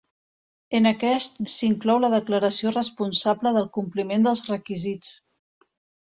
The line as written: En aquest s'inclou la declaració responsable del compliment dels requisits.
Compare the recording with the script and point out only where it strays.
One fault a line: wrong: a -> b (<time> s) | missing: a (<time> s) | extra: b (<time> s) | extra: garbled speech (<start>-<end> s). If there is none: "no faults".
no faults